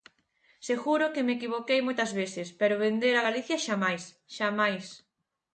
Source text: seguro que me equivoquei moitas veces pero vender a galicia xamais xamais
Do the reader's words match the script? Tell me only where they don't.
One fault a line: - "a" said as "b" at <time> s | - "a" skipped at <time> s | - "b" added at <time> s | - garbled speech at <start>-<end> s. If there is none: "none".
none